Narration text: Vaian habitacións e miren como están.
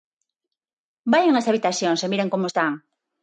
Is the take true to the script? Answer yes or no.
no